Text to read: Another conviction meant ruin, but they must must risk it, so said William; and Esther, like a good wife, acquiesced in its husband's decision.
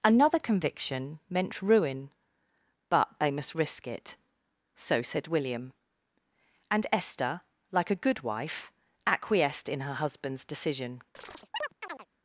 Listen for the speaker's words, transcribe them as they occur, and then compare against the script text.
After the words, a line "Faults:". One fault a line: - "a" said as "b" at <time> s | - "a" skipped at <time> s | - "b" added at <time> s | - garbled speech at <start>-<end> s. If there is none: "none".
Another conviction meant ruin, but they must risk it, so said William; and Esther, like a good wife, acquiesced in her husband's decision.
Faults:
- "must" skipped at 3.5 s
- "its" said as "her" at 9.8 s